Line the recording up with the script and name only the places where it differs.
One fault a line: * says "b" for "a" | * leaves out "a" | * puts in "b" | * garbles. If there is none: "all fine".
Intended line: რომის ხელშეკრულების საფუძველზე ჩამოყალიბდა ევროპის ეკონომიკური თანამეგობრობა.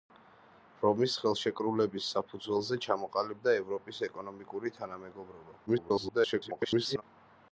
* garbles